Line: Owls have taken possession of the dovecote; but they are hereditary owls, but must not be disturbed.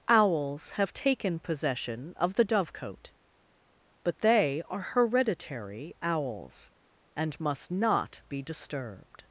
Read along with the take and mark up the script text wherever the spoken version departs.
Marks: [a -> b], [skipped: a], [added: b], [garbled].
Owls have taken possession of the dovecote; but they are hereditary owls, [but -> and] must not be disturbed.